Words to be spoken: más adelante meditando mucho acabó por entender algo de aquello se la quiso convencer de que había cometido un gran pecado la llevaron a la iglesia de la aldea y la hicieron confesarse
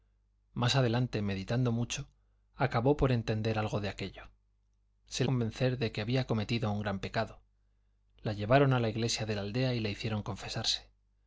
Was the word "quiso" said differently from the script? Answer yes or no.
yes